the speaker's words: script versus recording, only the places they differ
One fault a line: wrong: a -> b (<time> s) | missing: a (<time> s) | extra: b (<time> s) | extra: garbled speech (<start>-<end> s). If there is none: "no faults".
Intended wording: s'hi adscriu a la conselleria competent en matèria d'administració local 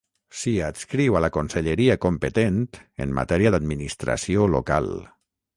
no faults